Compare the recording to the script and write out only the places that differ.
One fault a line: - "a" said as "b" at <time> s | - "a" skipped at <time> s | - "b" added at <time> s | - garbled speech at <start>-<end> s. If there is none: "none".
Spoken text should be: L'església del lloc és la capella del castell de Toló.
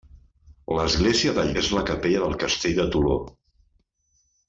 - "lloc" skipped at 1.5 s